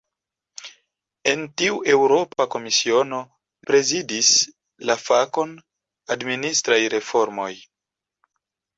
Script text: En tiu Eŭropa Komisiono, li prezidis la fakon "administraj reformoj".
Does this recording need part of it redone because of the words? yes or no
yes